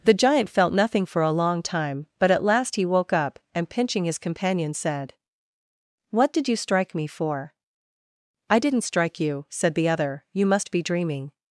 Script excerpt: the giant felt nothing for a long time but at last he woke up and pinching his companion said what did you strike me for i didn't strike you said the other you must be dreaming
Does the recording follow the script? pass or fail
pass